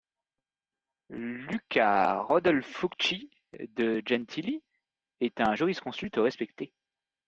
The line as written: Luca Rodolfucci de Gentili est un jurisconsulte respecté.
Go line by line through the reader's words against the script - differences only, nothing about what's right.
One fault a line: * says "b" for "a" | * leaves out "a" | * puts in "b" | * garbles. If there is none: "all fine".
all fine